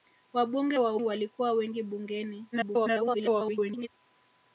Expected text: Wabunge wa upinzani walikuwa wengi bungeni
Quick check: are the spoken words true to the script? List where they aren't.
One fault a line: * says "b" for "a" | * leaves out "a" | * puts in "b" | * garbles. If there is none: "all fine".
* leaves out "upinzani"
* garbles